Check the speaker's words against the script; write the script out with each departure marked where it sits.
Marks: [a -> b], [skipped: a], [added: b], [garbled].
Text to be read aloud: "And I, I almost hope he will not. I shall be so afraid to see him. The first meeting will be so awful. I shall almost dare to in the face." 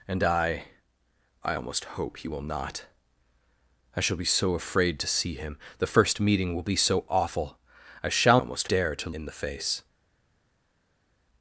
"And I, I almost hope he will not. I shall be so afraid to see him. The first meeting will be so awful. I shall almost dare to in the face."